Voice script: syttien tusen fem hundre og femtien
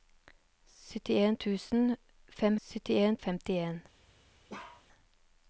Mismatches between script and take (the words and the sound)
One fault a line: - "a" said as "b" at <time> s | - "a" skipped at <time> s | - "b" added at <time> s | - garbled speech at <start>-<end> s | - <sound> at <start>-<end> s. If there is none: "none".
- "hundre" said as "syttien" at 2.7 s
- bark at 4.5-4.9 s